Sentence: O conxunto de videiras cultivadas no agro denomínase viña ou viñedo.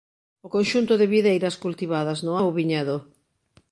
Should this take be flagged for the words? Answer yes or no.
yes